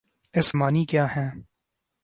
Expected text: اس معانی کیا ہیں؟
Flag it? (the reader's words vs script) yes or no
no